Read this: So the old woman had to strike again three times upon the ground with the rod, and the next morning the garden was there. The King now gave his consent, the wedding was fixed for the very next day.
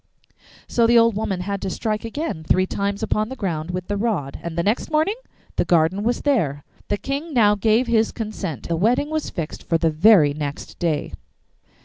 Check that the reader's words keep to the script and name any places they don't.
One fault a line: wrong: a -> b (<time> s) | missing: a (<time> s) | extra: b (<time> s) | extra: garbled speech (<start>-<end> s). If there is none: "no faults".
no faults